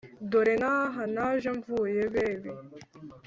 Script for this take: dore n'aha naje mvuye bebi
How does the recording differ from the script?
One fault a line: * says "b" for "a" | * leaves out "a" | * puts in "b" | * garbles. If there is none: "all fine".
all fine